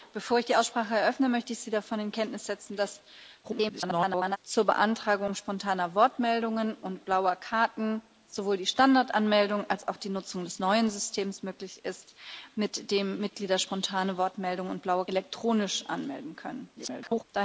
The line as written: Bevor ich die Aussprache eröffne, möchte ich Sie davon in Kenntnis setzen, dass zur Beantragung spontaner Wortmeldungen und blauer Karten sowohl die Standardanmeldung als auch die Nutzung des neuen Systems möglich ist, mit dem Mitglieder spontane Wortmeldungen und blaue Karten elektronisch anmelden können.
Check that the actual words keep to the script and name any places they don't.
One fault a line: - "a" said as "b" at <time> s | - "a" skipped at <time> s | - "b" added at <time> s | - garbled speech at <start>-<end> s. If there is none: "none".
- garbled speech at 3.4-4.4 s
- "Karten" skipped at 15.0 s
- garbled speech at 16.8-17.2 s